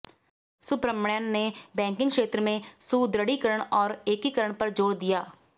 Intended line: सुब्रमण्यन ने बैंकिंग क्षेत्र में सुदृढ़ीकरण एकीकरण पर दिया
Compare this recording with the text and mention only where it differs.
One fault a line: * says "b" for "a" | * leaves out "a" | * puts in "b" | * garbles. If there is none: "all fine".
* puts in "और"
* puts in "जोर"